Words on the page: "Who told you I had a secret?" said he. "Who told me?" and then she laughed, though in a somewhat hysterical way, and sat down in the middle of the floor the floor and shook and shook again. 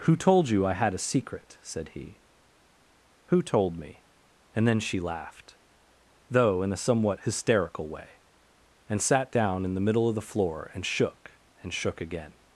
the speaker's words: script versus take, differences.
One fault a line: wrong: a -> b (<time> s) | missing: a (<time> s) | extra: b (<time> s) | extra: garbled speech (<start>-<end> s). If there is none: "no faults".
missing: the floor (10.7 s)